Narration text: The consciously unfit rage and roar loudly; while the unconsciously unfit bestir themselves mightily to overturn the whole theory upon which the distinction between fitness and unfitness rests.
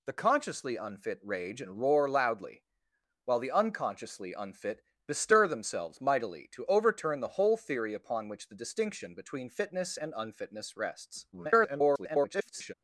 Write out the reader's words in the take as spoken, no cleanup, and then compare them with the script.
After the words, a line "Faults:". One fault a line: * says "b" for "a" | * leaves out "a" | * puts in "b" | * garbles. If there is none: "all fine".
The consciously unfit rage and roar loudly; while the unconsciously unfit bestir themselves mightily to overturn the whole theory upon which the distinction between fitness and unfitness rests. [garbled]
Faults:
* garbles